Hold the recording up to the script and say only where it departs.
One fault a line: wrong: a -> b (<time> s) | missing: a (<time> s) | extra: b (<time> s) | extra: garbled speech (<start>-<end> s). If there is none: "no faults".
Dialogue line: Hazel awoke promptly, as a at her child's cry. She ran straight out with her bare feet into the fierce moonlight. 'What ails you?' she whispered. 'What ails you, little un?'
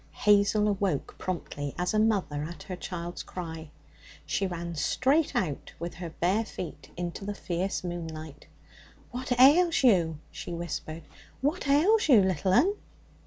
extra: mother (2.0 s)